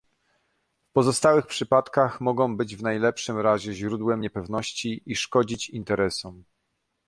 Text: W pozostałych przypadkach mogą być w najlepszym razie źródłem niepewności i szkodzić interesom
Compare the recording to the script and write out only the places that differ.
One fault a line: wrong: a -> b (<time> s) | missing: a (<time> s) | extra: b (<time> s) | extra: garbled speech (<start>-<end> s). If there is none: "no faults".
no faults